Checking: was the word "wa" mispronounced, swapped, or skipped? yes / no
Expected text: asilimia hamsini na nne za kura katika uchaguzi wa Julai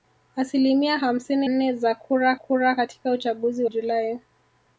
yes